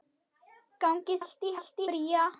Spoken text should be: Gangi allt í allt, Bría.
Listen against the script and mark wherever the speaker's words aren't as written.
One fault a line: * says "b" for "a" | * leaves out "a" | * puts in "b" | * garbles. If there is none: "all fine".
all fine